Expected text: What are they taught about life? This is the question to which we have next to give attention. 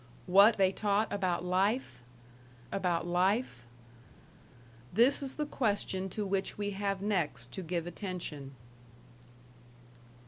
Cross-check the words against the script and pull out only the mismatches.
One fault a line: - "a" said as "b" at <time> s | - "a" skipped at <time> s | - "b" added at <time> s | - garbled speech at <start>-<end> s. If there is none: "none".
- "are" skipped at 0.6 s
- "about life" added at 2.7 s